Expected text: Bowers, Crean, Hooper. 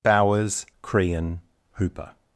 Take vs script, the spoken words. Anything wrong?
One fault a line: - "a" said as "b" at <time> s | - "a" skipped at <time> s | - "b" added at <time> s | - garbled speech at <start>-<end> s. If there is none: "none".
none